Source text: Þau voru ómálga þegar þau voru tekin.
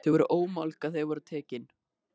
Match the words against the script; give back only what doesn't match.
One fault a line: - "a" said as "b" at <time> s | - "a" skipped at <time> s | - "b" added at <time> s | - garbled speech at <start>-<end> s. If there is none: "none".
none